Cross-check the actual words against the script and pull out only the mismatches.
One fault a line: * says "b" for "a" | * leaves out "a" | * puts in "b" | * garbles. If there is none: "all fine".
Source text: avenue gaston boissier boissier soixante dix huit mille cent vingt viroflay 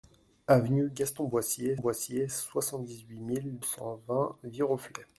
all fine